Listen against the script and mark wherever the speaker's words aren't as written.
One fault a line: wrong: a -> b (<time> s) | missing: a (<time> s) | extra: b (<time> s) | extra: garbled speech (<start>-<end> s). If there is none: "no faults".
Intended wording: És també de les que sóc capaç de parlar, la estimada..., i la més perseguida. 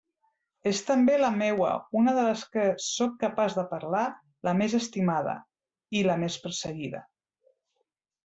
extra: la meua una (1.2 s)
extra: més (4.6 s)